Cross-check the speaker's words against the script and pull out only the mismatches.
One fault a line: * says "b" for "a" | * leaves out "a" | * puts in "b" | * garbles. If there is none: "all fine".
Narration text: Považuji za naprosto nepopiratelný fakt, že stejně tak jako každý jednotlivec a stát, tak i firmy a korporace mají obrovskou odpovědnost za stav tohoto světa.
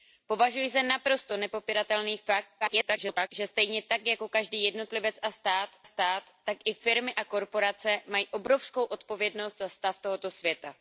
* garbles
* puts in "stát"